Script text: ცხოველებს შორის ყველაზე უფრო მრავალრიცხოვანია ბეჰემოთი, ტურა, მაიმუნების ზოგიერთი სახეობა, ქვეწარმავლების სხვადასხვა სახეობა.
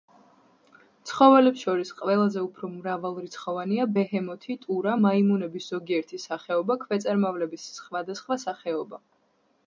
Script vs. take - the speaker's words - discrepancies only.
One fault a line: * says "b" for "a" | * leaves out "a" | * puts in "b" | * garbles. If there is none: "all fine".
all fine